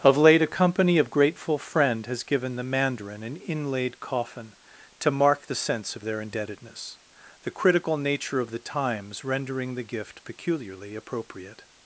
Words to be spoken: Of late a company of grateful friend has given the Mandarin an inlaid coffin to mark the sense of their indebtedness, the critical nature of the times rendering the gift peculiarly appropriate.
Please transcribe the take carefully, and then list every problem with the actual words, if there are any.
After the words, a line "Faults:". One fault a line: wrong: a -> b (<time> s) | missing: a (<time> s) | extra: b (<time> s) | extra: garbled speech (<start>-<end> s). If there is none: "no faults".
Of late a company of grateful friend has given the Mandarin an inlaid coffin to mark the sense of their indebtedness, the critical nature of the times rendering the gift peculiarly appropriate.
Faults:
no faults